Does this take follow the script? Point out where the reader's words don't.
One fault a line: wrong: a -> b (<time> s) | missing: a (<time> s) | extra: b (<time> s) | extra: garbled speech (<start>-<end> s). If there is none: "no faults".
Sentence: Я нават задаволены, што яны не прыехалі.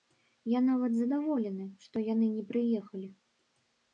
no faults